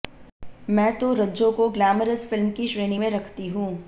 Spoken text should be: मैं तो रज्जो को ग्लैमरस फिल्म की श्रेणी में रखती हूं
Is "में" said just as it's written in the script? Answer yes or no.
yes